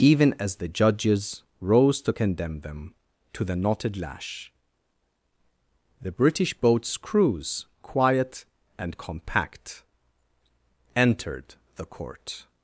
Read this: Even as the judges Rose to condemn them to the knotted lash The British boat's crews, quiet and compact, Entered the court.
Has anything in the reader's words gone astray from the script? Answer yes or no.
no